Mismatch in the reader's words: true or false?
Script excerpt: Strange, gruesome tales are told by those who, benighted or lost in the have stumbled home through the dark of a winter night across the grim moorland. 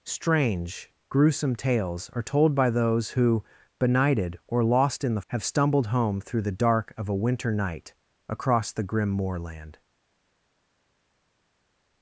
false